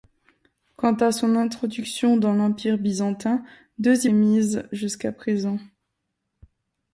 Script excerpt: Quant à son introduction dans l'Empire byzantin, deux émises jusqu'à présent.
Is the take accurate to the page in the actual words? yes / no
yes